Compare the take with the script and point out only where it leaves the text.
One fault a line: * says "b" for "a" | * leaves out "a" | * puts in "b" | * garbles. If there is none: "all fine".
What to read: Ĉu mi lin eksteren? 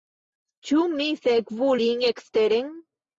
* puts in "sekvu"